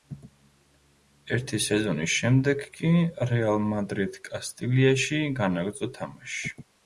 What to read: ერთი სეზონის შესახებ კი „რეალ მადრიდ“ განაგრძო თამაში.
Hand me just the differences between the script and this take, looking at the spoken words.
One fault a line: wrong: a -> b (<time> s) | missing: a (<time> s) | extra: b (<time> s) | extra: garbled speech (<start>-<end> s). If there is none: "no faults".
wrong: შესახებ -> შემდეგ (2.2 s)
extra: კასტილიაში (4.3 s)